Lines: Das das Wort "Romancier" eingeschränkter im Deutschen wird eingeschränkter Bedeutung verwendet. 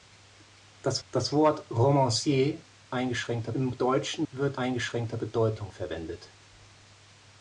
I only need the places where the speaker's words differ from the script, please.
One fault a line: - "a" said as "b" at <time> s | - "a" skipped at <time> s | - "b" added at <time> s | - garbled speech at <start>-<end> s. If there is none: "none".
none